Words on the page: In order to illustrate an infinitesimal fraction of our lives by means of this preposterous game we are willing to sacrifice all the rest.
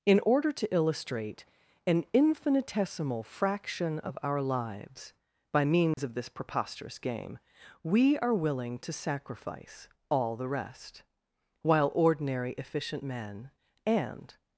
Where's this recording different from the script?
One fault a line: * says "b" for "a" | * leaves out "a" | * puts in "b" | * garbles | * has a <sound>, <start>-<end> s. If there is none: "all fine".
* has a dropout, 5.9-6.0 s
* puts in "While ordinary efficient men and"